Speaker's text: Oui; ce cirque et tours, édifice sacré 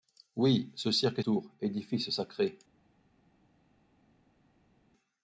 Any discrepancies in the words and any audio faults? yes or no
no